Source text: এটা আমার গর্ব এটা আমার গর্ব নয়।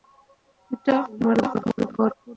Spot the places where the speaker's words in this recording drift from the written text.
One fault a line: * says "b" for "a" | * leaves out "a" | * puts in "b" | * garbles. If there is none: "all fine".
* leaves out "এটা আমার গর্ব"